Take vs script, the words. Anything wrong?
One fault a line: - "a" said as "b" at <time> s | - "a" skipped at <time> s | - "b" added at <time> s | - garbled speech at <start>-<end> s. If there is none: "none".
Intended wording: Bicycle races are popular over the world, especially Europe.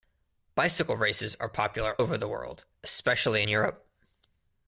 none